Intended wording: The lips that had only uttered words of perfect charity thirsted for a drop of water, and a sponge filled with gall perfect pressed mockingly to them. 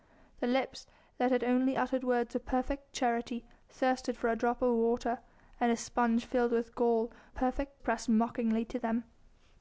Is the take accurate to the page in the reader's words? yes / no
yes